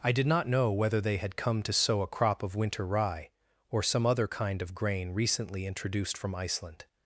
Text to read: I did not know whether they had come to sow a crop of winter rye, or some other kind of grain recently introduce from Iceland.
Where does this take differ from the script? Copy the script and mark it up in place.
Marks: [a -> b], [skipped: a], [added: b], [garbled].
I did not know whether they had come to sow a crop of winter rye, or some other kind of grain recently [introduce -> introduced] from Iceland.